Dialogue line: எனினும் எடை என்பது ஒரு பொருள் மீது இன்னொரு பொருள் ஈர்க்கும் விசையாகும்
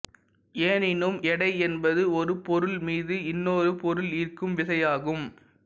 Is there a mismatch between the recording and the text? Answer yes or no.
no